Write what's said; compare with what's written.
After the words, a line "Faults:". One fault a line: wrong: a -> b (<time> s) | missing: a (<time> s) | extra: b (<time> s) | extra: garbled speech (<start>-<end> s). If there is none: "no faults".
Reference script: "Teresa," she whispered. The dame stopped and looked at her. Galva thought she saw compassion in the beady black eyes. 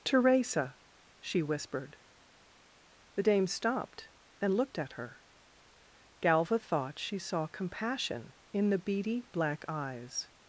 "Teresa," she whispered. The dame stopped and looked at her. Galva thought she saw compassion in the beady black eyes.
Faults:
no faults